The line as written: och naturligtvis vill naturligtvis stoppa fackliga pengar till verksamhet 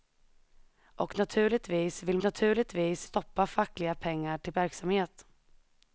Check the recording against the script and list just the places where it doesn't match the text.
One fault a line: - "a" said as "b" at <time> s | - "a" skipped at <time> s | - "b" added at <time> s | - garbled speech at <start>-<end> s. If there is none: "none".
none